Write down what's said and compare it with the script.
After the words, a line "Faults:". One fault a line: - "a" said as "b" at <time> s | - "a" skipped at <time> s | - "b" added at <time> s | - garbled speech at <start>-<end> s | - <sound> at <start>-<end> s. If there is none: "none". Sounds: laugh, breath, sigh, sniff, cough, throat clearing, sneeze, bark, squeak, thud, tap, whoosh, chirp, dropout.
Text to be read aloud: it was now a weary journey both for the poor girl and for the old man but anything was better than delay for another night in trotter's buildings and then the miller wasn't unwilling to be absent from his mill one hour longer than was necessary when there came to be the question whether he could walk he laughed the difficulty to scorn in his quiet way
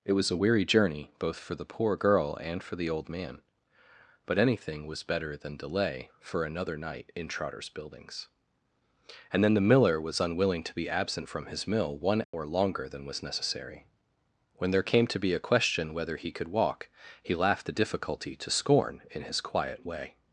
it was a weary journey both for the poor girl and for the old man but anything was better than delay for another night in trotter's buildings and then the miller was unwilling to be absent from his mill one hour longer than was necessary when there came to be a question whether he could walk he laughed the difficulty to scorn in his quiet way
Faults:
- "now" skipped at 0.3 s
- "wasn't" said as "was" at 10.0 s
- dropout at 12.2-12.3 s
- "the" said as "a" at 15.3 s